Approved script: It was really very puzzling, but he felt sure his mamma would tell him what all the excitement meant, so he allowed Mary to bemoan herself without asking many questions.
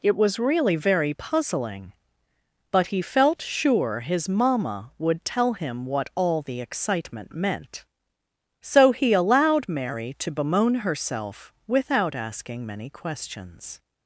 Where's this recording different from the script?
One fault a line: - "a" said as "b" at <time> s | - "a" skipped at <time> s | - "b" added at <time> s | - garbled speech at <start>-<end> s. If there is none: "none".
none